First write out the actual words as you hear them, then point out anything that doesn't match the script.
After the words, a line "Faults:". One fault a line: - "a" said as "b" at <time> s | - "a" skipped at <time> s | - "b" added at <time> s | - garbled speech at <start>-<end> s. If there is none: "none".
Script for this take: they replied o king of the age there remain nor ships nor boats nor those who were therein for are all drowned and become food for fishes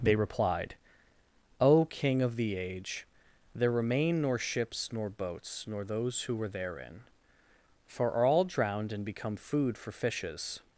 they replied o king of the age there remain nor ships nor boats nor those who were therein for are all drowned and become food for fishes
Faults:
none